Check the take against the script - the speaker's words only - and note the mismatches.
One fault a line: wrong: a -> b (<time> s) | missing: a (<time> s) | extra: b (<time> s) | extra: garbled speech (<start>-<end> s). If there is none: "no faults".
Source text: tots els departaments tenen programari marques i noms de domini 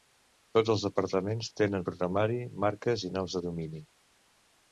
no faults